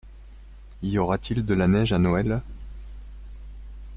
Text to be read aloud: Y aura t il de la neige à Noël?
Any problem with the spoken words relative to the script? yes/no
no